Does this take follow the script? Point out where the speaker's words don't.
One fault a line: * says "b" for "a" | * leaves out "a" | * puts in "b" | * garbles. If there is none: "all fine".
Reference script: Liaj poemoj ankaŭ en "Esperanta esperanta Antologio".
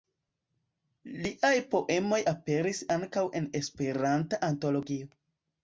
* puts in "aperis"
* leaves out "esperanta"